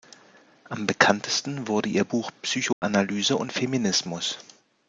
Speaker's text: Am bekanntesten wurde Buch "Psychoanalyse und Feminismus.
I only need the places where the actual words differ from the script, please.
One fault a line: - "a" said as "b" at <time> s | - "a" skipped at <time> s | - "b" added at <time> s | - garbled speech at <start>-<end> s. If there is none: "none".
- "ihr" added at 1.9 s